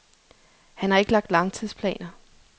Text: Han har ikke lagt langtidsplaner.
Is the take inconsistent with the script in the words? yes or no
no